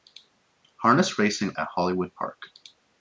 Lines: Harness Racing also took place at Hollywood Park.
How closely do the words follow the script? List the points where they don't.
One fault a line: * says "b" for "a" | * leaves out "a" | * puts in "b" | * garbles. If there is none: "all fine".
* leaves out "also took place"